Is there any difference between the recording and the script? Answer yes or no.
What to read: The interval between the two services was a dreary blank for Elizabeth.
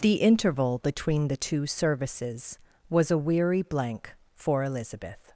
yes